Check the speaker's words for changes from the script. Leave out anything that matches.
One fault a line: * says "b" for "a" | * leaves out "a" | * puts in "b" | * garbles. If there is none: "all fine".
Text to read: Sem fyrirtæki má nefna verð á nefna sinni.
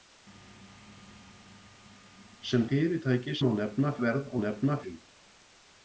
all fine